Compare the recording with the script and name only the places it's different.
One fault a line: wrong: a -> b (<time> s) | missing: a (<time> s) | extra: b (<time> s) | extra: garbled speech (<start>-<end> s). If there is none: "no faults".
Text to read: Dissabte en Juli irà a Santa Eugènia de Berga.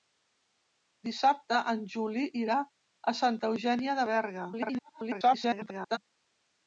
extra: garbled speech (4.5-6.0 s)